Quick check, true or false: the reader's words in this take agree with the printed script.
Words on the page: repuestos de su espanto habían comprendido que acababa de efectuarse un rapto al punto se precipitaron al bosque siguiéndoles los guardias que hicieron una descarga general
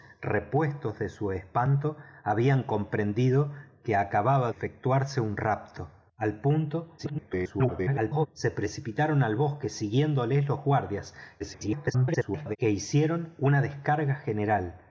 false